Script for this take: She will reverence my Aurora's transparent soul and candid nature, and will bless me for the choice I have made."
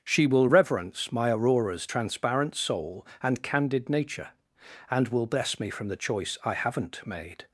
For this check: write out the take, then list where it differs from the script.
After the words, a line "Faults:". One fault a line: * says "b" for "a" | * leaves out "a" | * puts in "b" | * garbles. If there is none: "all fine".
She will reverence my Aurora's transparent soul and candid nature, and will bless me from the choice I haven't made."
Faults:
* says "from" for "for"
* says "haven't" for "have"